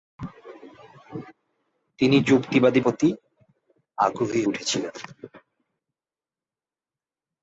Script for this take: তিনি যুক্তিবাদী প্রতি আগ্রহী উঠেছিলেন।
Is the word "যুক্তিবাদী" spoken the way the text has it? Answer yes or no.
yes